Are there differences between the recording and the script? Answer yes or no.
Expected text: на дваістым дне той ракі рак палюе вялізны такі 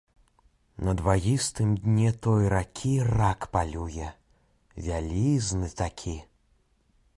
no